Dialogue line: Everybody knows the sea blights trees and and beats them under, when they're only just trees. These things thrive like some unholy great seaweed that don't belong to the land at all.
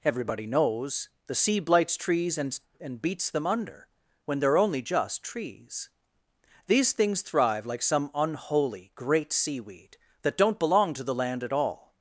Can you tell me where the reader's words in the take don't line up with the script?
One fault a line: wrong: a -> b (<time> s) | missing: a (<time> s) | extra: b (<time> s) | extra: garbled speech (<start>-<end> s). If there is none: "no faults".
no faults